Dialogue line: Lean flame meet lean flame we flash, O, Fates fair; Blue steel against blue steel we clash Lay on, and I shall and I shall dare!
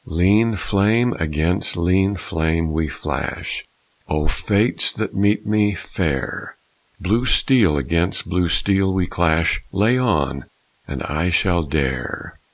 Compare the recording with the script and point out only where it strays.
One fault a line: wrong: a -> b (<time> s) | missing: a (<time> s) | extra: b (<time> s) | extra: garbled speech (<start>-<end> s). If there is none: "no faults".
wrong: meet -> against (1.2 s)
extra: that meet me (4.9 s)
missing: and I shall (11.6 s)